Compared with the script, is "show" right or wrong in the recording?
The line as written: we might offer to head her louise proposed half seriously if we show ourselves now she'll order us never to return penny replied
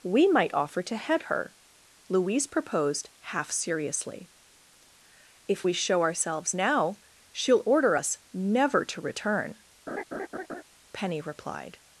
right